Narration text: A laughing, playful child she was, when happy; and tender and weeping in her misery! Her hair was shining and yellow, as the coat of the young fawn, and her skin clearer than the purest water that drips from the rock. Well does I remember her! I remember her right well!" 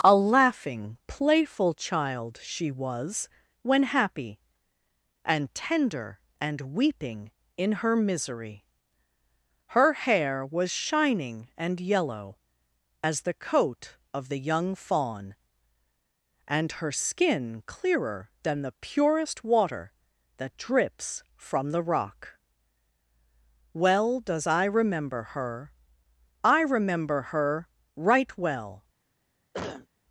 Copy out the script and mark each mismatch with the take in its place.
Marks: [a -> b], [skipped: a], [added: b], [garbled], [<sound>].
A laughing, playful child she was, when happy; and tender and weeping in her misery! Her hair was shining and yellow, as the coat of the young fawn, and her skin clearer than the purest water that drips from the rock. Well does I remember her! I remember her right well!" [cough]